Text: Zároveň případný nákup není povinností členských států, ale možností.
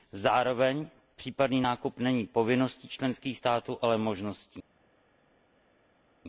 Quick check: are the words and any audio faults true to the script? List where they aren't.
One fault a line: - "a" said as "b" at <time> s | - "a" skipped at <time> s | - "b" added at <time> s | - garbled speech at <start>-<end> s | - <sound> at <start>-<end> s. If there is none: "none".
none